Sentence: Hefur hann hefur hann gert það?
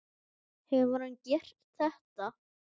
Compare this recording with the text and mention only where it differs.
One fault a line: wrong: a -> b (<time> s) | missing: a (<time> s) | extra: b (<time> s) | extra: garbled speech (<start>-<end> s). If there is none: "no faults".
missing: hefur hann (1.2 s)